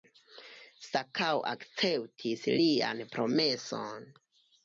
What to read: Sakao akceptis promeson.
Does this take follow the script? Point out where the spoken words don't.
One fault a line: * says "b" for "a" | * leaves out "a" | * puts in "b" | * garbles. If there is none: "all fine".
* puts in "lian"